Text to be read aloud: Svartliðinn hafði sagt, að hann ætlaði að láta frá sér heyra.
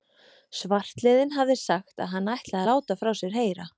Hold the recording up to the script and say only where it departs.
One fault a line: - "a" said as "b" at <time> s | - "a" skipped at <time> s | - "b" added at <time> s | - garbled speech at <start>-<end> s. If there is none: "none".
- "að" skipped at 2.6 s